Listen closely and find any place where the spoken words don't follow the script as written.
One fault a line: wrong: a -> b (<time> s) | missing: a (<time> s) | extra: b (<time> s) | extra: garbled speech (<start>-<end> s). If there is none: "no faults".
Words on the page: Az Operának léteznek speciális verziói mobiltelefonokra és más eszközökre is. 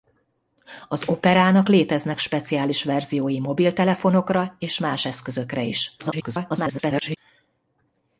extra: garbled speech (6.0-7.2 s)